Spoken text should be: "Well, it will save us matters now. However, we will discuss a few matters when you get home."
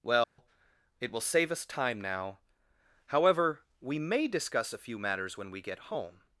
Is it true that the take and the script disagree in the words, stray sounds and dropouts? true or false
true